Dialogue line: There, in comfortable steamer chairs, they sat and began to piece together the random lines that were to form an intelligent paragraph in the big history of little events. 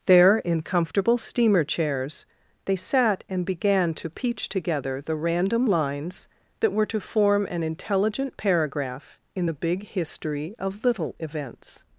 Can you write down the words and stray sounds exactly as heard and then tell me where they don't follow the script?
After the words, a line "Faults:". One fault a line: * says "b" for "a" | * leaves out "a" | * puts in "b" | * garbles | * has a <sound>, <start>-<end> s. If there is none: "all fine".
There, in comfortable steamer chairs, they sat and began to peach together the random lines that were to form an intelligent paragraph in the big history of little events.
Faults:
* says "peach" for "piece"